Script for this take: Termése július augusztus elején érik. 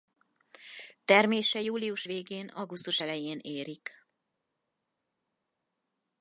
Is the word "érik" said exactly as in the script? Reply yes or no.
yes